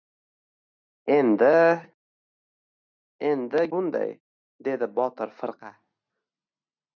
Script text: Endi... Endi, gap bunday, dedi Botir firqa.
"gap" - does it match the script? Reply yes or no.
no